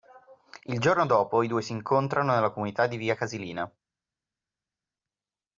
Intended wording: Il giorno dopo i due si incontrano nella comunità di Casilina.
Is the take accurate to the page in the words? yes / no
no